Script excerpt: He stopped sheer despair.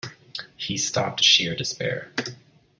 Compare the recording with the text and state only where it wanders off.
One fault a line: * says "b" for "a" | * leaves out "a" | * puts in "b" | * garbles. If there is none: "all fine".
all fine